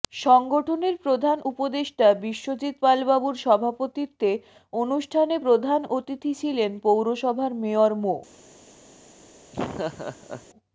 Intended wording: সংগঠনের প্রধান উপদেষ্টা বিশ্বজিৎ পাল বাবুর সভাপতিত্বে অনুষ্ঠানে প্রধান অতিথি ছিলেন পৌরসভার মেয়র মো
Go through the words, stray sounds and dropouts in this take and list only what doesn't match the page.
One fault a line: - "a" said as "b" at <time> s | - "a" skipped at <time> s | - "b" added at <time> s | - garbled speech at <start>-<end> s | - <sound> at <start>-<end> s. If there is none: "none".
- laugh at 9.5-10.5 s